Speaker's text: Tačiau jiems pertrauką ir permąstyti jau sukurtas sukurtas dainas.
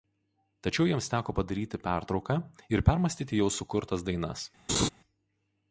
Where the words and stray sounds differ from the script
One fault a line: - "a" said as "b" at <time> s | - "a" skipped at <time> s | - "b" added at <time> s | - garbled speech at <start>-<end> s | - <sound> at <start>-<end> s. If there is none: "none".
- "teko padaryti" added at 1.1 s
- "sukurtas" skipped at 4.1 s
- laugh at 4.7-4.9 s